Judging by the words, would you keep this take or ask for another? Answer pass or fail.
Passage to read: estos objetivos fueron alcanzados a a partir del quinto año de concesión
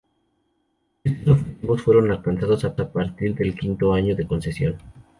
pass